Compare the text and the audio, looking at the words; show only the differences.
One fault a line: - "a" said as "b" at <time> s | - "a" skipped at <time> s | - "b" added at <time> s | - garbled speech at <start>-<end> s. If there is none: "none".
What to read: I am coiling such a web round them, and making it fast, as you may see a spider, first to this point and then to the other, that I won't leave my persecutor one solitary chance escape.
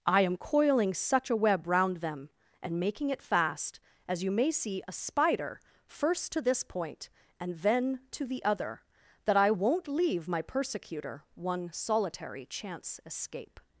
none